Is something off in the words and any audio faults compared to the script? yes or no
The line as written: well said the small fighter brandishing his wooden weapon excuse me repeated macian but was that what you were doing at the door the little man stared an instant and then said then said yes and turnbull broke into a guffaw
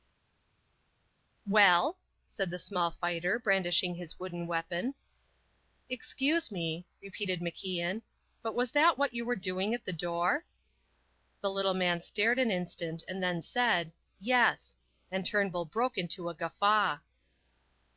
yes